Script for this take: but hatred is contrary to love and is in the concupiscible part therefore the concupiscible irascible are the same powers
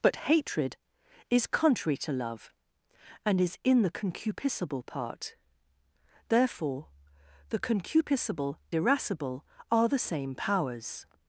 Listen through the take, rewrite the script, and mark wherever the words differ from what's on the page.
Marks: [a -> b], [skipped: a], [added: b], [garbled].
but hatred is contrary to love and is in the concupiscible part therefore the concupiscible irascible are the same powers